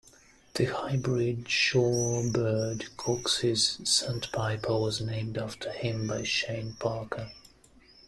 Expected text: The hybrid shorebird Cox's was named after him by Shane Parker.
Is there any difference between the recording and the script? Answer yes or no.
yes